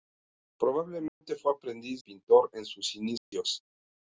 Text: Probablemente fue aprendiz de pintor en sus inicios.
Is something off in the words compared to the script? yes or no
yes